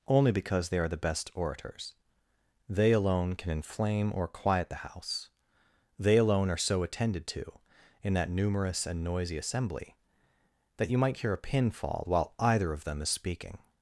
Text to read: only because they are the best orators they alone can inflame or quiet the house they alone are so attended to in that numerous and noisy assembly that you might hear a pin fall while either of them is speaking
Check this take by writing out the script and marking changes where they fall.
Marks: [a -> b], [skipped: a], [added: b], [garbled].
only because they are the best orators they alone can inflame or quiet the house they alone are so attended to in that numerous and noisy assembly that you might hear a pin fall while either of them is speaking